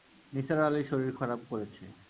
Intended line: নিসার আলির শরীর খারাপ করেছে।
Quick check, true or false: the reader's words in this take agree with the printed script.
true